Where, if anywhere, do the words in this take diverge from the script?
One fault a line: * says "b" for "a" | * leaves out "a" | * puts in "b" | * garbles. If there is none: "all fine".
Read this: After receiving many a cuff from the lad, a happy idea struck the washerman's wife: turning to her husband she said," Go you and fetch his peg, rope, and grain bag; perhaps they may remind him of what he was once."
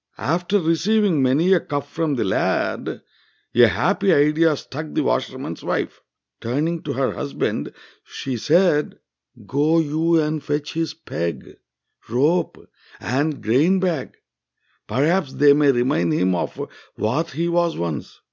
all fine